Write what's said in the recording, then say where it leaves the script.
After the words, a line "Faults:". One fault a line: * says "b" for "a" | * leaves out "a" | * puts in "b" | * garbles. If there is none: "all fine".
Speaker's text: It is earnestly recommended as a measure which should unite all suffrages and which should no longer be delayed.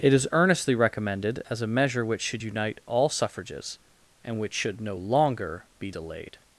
It is earnestly recommended as a measure which should unite all suffrages and which should no longer be delayed.
Faults:
all fine